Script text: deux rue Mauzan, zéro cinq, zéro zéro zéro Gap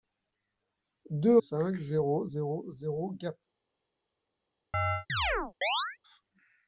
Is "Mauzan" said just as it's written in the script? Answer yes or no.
no